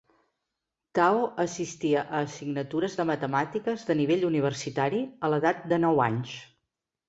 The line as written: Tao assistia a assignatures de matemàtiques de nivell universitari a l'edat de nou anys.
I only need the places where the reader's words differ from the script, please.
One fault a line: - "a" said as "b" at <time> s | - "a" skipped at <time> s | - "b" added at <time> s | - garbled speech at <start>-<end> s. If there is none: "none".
none